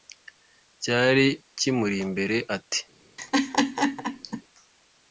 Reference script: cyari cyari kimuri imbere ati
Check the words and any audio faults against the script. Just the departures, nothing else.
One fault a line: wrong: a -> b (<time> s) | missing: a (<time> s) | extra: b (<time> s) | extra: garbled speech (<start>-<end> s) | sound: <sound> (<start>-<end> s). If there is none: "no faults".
missing: cyari (1.3 s)
sound: laugh (3.2-4.4 s)